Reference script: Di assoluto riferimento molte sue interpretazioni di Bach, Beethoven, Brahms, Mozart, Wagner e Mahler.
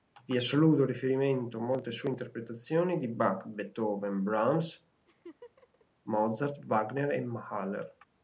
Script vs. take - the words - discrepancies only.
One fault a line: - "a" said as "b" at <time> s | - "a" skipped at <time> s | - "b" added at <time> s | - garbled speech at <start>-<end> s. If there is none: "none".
none